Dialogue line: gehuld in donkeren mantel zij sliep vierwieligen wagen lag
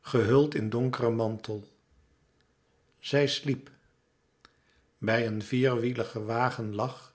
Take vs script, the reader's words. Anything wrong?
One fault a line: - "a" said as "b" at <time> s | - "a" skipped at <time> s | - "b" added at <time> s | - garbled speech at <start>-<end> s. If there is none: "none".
- "bij een" added at 5.0 s